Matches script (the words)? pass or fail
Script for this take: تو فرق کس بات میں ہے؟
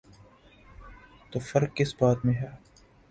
pass